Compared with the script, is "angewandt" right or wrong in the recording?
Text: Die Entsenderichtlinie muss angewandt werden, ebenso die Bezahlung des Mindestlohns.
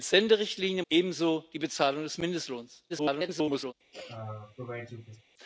wrong